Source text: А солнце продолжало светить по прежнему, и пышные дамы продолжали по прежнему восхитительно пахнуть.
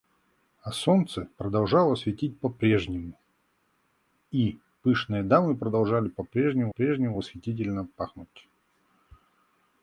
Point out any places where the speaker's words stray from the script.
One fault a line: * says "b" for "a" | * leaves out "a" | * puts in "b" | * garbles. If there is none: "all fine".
* puts in "прежнему"